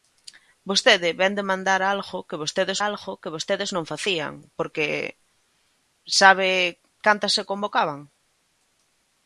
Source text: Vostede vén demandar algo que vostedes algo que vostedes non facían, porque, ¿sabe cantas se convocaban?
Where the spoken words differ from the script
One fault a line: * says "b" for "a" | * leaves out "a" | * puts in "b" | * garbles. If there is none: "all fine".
all fine